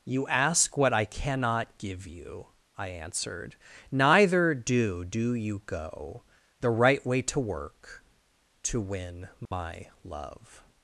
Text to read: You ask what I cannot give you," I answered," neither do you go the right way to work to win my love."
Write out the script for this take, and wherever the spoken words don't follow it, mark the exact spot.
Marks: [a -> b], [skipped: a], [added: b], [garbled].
You ask what I cannot give you," I answered," neither do [added: do] you go the right way to work to win my love."